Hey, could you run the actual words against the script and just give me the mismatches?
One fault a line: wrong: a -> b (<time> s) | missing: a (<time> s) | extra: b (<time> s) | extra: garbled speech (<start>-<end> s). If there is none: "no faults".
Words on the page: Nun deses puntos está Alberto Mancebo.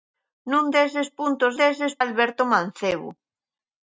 wrong: está -> deses (1.6 s)